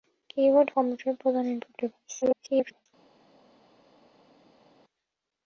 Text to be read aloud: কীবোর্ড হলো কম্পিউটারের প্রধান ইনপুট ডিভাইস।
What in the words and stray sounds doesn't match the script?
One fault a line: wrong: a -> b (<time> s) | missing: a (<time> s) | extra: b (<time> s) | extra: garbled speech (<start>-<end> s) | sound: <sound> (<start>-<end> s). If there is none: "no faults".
missing: হলো (0.7 s)
extra: garbled speech (2.2-2.9 s)